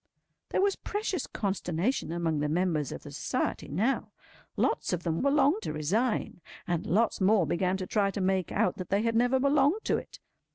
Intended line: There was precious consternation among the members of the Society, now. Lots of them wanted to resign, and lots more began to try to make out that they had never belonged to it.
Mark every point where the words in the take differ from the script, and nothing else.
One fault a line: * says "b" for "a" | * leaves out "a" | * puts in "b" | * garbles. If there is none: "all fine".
* says "belonged" for "wanted"